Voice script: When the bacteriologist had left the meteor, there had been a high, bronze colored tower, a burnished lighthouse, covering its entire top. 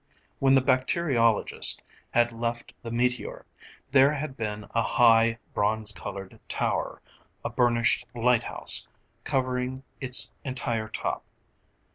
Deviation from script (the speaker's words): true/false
false